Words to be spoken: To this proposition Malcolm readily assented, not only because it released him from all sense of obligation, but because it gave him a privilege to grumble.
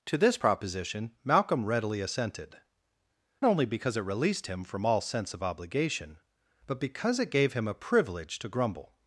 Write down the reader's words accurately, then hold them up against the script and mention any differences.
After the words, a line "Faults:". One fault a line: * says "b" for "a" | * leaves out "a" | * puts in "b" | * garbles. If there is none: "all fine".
To this proposition Malcolm readily assented, only because it released him from all sense of obligation, but because it gave him a privilege to grumble.
Faults:
* leaves out "not"